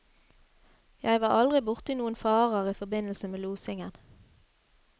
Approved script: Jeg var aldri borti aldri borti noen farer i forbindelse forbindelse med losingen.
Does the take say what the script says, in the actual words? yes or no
no